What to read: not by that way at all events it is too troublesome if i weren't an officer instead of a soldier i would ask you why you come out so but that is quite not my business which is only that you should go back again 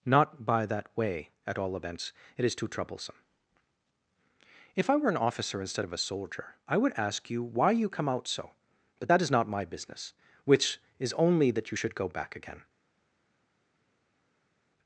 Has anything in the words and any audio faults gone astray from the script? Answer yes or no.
yes